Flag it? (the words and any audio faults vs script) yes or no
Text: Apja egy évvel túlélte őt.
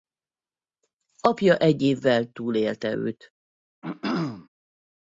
yes